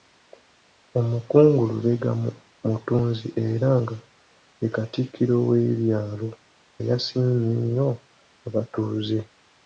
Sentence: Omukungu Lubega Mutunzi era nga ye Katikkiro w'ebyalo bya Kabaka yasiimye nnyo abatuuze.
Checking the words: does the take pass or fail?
fail